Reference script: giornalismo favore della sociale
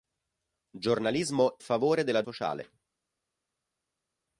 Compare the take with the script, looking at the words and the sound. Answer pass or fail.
pass